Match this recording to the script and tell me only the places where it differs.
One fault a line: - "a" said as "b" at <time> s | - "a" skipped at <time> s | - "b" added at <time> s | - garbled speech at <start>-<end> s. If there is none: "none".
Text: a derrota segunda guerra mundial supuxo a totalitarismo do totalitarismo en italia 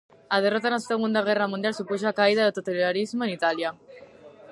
- "na" added at 0.7 s
- "totalitarismo" said as "caída" at 2.2 s